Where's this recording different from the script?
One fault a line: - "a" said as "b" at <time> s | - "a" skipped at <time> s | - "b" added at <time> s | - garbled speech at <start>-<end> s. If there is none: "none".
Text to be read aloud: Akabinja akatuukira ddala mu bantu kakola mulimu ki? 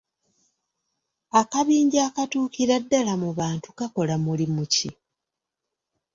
none